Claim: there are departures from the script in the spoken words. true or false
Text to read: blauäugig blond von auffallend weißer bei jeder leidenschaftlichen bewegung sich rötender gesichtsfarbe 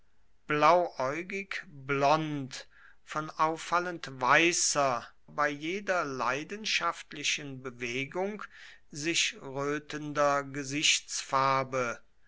false